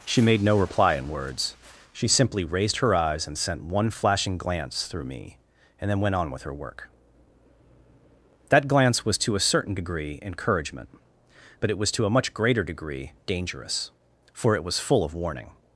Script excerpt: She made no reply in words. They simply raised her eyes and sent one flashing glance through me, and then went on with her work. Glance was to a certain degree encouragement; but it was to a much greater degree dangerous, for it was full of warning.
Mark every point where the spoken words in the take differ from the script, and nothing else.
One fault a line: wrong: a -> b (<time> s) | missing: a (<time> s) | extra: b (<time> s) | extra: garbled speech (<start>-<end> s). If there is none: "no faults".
wrong: They -> She (1.9 s)
extra: That (8.5 s)